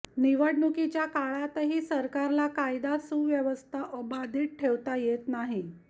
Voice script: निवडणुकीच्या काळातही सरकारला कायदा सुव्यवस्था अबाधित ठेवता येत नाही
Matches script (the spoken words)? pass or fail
pass